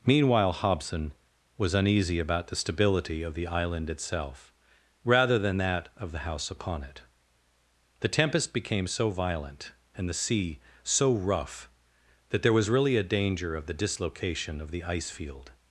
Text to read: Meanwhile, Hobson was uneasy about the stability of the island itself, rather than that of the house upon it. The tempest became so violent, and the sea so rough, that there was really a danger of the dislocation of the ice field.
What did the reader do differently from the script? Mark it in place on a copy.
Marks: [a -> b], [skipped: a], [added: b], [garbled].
Meanwhile, Hobson was uneasy about the stability of the island itself, rather than that of the house upon it. The tempest became so violent, and the sea so rough, that there was really a danger of the dislocation of the ice field.